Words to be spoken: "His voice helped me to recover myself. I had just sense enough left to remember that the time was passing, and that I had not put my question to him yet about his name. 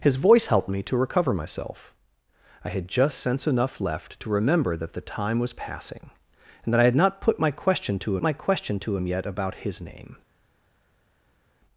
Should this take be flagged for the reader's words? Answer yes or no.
yes